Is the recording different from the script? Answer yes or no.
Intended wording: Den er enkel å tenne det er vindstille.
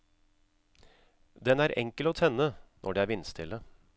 yes